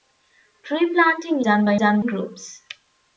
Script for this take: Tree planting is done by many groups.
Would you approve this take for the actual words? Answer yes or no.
no